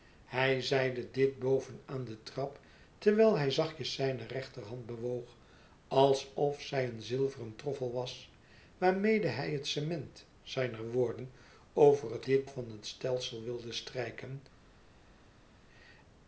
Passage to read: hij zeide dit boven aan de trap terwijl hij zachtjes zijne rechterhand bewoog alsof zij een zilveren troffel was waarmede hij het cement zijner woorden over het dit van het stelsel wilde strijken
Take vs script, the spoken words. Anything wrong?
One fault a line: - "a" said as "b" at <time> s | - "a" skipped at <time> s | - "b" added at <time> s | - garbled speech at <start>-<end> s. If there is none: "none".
none